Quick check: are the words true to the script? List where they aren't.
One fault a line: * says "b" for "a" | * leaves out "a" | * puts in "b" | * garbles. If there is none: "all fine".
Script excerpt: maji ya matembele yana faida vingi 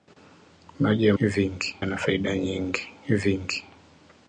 * says "vingi" for "matembele"